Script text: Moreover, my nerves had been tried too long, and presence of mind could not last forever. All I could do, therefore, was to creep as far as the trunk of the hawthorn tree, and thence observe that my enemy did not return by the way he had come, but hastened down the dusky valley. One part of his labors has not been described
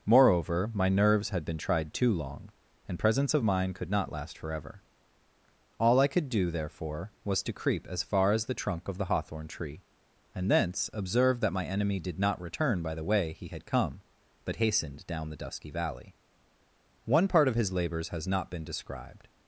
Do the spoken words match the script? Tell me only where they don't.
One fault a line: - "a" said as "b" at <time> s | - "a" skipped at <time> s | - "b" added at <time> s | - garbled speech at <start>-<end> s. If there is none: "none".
none